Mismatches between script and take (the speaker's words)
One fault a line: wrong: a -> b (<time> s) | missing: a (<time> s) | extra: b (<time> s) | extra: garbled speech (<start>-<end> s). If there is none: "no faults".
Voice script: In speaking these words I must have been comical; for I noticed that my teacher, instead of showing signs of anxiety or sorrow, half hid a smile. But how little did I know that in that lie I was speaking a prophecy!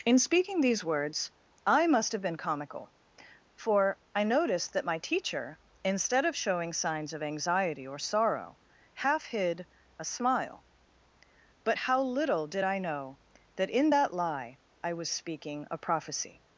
no faults